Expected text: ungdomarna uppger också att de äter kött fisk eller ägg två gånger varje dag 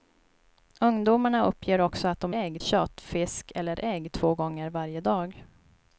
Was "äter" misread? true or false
true